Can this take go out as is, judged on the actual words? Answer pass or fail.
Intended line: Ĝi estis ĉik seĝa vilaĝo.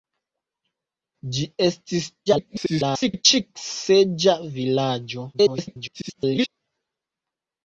fail